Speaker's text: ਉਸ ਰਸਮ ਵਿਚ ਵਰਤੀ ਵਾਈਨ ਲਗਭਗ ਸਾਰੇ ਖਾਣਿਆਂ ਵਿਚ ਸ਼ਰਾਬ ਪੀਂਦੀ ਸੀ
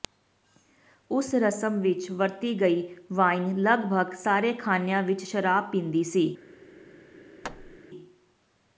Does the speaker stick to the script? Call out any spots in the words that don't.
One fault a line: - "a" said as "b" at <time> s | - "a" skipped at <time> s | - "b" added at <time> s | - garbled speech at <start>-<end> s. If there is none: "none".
- "ਗਈ" added at 2.6 s